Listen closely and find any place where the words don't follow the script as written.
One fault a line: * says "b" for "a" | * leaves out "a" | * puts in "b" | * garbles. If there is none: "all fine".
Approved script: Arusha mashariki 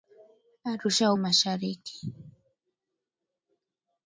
all fine